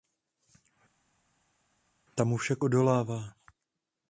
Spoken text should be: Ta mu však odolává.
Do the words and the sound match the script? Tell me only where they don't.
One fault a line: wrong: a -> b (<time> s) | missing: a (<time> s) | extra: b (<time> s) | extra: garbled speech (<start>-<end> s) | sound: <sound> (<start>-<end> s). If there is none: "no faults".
no faults